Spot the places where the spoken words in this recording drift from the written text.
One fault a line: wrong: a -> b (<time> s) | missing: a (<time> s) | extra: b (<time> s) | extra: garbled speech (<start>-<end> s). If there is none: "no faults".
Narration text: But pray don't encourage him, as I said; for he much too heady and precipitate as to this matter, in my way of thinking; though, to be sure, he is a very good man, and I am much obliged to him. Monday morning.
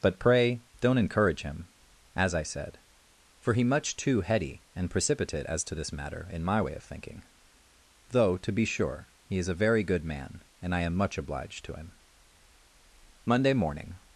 no faults